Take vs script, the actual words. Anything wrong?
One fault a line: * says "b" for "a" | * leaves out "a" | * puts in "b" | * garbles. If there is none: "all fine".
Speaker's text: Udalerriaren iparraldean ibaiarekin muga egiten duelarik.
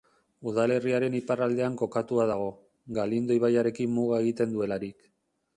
* puts in "kokatua dago Galindo"